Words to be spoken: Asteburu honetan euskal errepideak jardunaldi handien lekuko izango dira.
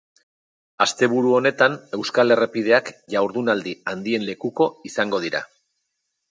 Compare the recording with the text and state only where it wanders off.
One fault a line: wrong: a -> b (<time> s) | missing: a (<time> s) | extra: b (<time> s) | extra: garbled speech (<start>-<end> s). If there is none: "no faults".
no faults